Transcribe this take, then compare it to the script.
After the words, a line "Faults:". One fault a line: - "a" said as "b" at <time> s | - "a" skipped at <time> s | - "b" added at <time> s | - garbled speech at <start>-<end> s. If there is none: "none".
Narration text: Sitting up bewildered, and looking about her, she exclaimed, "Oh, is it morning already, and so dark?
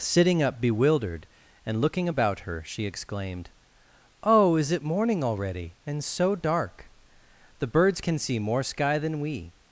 Sitting up bewildered, and looking about her, she exclaimed, "Oh, is it morning already, and so dark? The birds can see more sky than we
Faults:
- "The birds can see more sky than we" added at 7.6 s